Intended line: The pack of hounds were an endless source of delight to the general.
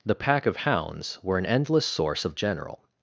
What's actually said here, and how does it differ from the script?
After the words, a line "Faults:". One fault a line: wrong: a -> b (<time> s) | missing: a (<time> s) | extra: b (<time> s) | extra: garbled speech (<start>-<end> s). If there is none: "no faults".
The pack of hounds were an endless source of general.
Faults:
missing: delight to the (2.3 s)